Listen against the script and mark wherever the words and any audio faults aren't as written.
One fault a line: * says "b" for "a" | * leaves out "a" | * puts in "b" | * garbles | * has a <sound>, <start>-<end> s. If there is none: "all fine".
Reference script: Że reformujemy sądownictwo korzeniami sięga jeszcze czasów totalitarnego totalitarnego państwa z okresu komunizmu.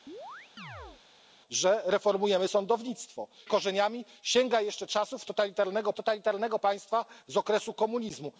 * has a chirp, 0.1-1.0 s